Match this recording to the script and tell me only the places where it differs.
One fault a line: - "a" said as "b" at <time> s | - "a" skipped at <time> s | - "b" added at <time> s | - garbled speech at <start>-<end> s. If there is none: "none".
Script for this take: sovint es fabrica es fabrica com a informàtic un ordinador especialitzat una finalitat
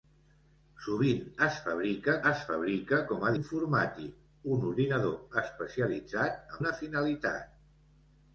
none